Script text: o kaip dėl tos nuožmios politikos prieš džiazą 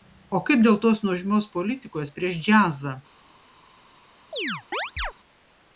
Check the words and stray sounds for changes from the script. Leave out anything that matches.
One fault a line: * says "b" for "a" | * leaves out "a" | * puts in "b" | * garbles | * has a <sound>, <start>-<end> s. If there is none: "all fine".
* has a chirp, 4.3-5.1 s